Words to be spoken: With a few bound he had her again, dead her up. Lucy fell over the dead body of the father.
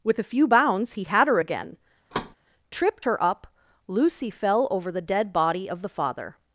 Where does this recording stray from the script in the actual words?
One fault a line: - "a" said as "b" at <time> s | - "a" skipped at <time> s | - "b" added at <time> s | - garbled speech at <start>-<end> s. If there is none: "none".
- "bound" said as "bounds" at 0.5 s
- "dead" said as "tripped" at 2.7 s